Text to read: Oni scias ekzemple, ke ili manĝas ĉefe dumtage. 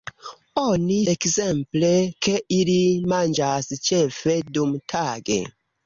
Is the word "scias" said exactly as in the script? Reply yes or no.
no